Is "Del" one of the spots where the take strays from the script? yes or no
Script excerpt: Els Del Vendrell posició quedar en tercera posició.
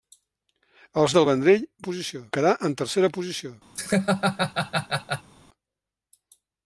no